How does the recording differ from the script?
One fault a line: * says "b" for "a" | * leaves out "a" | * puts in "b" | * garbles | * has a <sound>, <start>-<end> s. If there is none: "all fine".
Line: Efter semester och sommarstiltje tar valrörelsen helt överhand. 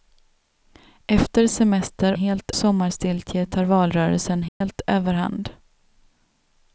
* says "helt" for "och"
* has a dropout, 4.5-4.6 s